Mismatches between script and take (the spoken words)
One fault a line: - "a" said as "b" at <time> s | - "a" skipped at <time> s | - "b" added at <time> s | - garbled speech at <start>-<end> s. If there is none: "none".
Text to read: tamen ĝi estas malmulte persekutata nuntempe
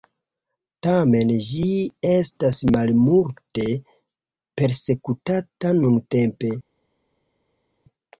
none